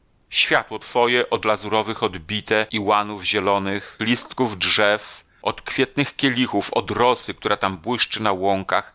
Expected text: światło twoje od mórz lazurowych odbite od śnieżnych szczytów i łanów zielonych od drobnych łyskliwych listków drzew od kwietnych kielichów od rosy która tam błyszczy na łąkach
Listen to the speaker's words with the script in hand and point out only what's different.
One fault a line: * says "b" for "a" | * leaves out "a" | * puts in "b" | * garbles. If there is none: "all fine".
* leaves out "mórz"
* leaves out "od śnieżnych szczytów"
* leaves out "od drobnych łyskliwych"